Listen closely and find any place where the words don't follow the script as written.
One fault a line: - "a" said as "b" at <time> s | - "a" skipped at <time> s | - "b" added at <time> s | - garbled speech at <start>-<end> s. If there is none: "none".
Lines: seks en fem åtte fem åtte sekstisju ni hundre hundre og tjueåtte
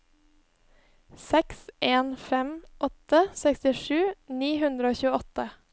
- "fem åtte" skipped at 3.2 s
- "hundre" skipped at 4.9 s